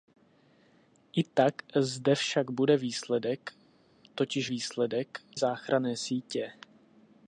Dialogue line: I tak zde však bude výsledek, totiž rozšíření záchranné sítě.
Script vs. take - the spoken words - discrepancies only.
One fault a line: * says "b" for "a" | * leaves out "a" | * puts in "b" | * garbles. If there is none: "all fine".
* says "výsledek" for "rozšíření"